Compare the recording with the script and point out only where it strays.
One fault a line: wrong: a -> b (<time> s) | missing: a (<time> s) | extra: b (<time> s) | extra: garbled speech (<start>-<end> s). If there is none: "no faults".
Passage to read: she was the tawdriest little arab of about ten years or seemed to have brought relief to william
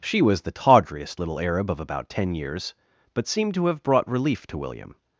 wrong: or -> but (3.1 s)